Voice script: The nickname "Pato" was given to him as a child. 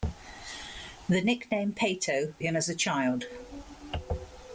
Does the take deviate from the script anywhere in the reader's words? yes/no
yes